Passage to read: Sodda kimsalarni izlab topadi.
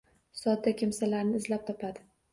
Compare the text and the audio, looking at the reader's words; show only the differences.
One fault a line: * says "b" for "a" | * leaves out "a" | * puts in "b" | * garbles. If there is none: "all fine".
all fine